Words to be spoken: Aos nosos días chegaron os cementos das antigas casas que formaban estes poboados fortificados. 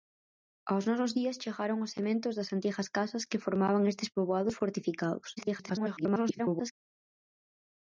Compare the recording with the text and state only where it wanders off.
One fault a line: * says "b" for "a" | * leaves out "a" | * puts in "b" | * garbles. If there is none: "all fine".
* garbles